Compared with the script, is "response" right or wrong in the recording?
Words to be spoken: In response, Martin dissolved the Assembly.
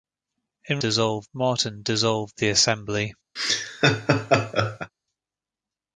wrong